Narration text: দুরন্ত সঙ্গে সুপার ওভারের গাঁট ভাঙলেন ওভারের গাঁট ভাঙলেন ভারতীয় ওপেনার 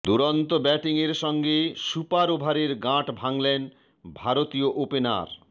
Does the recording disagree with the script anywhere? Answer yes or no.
yes